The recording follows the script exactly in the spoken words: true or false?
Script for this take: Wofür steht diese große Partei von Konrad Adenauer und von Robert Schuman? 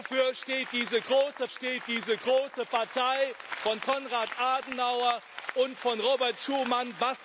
false